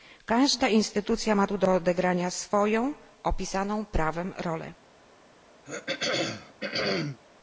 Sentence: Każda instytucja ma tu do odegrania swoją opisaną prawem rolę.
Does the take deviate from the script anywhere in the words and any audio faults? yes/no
yes